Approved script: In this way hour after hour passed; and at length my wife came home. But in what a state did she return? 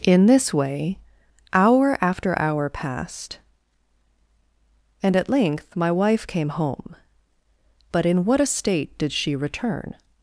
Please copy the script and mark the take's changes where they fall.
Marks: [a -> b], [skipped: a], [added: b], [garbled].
In this way hour after hour passed; and at length my wife came home. But in what a state did she return?